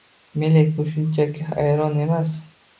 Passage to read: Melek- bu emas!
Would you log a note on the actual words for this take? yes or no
yes